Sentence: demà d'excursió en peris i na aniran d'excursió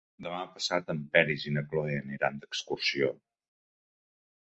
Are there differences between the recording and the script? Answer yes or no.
yes